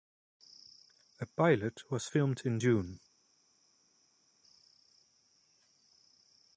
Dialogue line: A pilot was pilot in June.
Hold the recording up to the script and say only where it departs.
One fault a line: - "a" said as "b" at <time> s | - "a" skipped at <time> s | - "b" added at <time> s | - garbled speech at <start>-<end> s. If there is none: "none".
- "pilot" said as "filmed" at 2.0 s